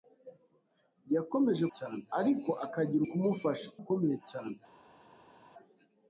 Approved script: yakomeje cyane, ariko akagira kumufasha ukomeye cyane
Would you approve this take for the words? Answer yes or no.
yes